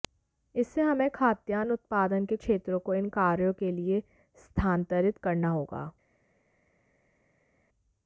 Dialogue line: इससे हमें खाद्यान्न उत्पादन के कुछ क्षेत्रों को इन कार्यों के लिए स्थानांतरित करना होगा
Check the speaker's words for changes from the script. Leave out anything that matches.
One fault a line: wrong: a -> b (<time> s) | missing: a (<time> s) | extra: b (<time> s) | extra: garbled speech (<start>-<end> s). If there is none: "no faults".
missing: कुछ (2.4 s)